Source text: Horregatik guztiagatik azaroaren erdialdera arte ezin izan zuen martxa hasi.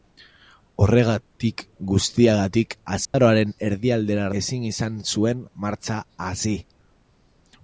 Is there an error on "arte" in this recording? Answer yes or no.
yes